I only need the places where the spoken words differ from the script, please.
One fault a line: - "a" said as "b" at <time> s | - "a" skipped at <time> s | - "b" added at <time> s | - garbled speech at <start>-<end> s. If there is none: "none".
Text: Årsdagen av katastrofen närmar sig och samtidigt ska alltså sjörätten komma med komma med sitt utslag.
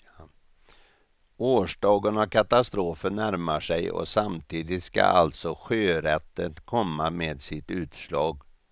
- "komma med" skipped at 7.4 s